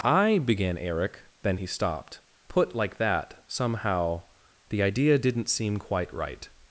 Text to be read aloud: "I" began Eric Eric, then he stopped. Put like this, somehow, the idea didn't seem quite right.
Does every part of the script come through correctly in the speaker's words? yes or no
no